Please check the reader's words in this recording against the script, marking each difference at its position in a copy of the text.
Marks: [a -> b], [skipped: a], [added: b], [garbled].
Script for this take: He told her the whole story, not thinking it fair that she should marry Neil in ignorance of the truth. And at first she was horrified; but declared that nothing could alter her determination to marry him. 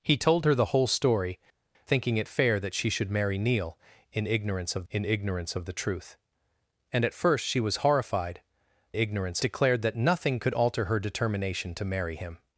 He told her the whole story, [skipped: not] thinking it fair that she should marry Neil in ignorance of [added: in ignorance of] the truth. And at first she was horrified; [but -> ignorance] declared that nothing could alter her determination to marry him.